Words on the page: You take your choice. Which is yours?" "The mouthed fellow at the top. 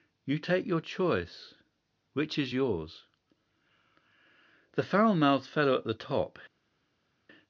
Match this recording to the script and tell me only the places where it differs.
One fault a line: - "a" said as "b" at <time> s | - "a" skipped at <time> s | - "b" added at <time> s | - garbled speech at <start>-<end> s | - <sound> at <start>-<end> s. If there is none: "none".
- "foul" added at 4.8 s